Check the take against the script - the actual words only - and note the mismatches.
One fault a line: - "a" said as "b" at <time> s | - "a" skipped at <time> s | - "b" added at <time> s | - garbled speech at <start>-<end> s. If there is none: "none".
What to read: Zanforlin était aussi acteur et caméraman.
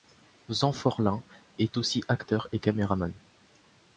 - "était" said as "est" at 1.6 s